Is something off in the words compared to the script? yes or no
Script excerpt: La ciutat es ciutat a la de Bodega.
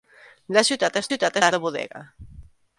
no